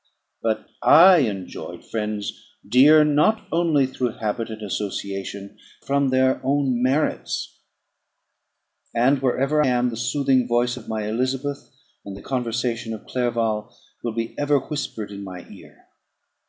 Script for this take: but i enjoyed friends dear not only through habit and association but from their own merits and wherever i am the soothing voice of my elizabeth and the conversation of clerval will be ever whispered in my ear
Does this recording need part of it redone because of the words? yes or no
yes